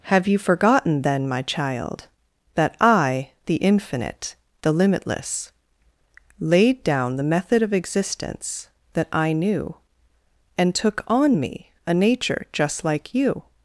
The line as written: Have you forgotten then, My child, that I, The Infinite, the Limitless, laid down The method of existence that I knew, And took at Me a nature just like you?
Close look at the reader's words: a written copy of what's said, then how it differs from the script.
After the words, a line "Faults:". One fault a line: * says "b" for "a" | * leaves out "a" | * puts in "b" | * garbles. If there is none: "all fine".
Have you forgotten then, My child, that I, The Infinite, the Limitless, laid down The method of existence that I knew, And took on Me a nature just like you?
Faults:
* says "on" for "at"